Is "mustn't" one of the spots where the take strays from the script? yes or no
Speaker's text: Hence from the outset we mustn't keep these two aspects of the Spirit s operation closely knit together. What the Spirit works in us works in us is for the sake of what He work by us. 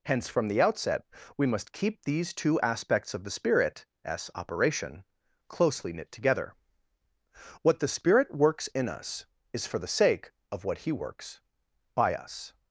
yes